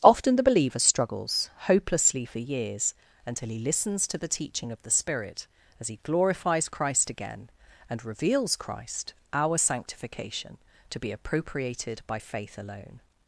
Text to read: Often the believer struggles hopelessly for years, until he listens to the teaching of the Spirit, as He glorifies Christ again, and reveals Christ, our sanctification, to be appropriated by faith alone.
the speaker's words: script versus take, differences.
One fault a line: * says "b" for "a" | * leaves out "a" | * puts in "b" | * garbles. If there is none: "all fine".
all fine